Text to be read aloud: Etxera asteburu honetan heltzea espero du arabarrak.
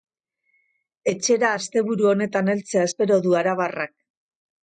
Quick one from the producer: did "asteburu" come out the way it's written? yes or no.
yes